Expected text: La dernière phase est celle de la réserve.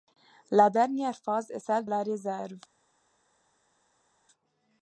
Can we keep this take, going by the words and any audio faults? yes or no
no